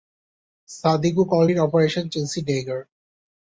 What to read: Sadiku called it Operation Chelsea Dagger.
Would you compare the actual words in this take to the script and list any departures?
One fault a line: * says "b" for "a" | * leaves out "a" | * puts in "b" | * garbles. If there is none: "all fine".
all fine